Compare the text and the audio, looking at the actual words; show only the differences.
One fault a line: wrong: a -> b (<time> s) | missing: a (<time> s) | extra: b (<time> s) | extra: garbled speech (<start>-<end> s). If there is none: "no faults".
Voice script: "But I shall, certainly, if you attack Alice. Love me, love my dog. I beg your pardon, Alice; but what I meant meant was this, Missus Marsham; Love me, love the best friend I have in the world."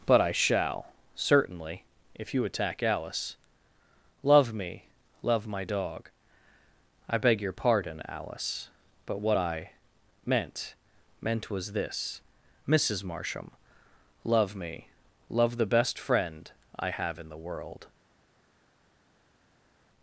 no faults